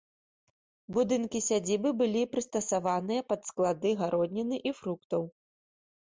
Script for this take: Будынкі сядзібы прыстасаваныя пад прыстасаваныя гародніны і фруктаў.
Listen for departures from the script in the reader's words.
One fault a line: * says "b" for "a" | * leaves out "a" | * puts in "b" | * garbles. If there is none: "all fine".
* puts in "былі"
* says "склады" for "прыстасаваныя"